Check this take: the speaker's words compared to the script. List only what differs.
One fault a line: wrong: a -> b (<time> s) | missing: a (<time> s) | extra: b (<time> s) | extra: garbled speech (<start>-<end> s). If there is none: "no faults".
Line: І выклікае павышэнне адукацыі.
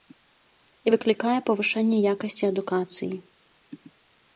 extra: якасці (2.1 s)